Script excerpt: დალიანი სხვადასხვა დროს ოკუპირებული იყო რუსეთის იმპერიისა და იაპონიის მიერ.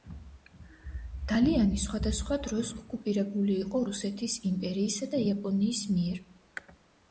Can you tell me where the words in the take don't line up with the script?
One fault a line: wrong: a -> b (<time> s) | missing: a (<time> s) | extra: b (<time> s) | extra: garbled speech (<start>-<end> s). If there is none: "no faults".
no faults